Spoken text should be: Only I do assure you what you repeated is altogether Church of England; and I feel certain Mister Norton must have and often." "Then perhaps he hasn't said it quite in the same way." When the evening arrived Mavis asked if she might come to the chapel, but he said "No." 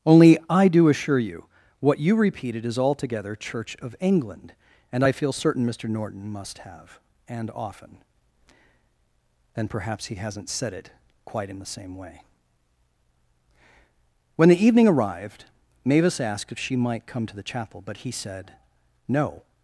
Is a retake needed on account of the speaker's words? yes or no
no